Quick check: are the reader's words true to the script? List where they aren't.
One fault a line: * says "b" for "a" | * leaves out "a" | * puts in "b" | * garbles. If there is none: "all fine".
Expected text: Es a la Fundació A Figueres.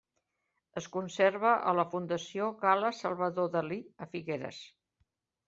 * puts in "conserva"
* puts in "Gala Salvador Dalí"